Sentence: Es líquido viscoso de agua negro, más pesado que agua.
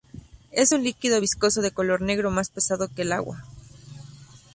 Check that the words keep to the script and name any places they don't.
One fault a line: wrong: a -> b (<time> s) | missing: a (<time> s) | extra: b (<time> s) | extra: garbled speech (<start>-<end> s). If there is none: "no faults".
extra: un (0.7 s)
wrong: agua -> color (1.7 s)
extra: el (3.0 s)